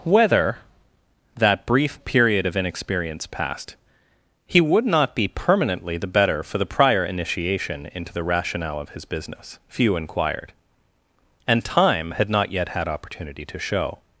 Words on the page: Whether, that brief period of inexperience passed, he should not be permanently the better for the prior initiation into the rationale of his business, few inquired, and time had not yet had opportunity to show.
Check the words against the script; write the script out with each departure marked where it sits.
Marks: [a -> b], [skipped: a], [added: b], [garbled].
Whether, that brief period of inexperience passed, he [should -> would] not be permanently the better for the prior initiation into the rationale of his business, few inquired, and time had not yet had opportunity to show.